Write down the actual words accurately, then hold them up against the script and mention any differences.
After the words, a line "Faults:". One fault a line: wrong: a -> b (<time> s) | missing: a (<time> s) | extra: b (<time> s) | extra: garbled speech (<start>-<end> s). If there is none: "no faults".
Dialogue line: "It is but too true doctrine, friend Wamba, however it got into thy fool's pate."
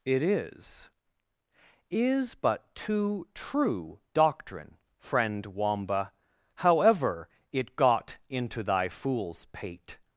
"It is is but too true doctrine, friend Wamba, however it got into thy fool's pate."
Faults:
extra: is (1.9 s)